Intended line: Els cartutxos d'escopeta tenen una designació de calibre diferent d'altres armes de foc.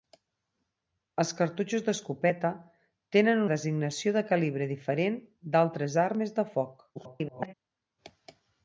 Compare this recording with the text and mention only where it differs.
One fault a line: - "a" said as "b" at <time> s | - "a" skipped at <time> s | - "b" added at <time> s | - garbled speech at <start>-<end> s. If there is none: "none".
- "una" skipped at 3.4 s
- garbled speech at 7.0-7.5 s